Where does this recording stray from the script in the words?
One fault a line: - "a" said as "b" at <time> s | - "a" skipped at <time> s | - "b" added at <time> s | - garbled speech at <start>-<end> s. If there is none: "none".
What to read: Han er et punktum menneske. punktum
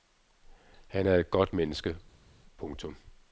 - "punktum" said as "godt" at 1.3 s